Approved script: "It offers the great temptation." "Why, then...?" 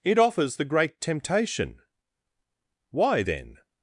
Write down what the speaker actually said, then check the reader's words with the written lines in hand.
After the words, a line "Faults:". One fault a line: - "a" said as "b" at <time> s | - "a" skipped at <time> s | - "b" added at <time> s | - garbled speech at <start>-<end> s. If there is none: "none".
"It offers the great temptation." "Why, then...?"
Faults:
none